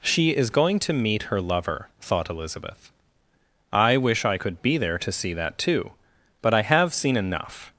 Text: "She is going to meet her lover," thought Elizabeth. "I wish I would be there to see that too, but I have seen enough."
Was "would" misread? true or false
true